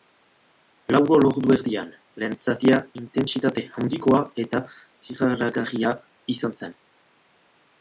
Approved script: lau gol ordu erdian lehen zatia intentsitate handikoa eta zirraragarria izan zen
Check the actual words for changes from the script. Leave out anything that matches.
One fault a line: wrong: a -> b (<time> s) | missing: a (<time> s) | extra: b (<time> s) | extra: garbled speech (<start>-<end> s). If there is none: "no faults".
no faults